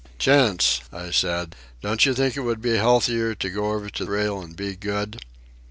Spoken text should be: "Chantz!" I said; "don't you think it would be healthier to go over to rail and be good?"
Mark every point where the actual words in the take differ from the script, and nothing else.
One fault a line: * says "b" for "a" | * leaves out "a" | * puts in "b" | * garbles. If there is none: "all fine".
all fine